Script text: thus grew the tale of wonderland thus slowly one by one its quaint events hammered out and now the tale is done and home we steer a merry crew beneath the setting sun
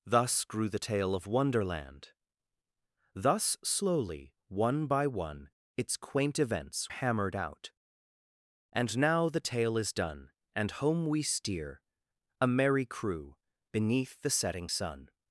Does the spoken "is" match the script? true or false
true